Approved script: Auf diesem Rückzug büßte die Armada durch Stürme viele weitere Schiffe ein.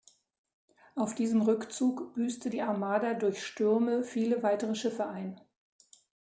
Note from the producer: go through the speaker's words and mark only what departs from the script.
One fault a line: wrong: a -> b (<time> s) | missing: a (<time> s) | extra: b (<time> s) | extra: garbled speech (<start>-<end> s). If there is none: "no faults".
no faults